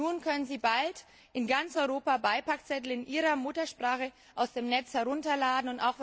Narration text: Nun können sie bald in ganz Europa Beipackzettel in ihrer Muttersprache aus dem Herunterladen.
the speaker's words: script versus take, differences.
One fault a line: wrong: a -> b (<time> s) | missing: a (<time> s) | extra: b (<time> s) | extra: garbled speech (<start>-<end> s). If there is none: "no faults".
extra: Netz (4.7 s)